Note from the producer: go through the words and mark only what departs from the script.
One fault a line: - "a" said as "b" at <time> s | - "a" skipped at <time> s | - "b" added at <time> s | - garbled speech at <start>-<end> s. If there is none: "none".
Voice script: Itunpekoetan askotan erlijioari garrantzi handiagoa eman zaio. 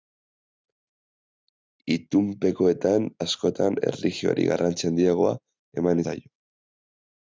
none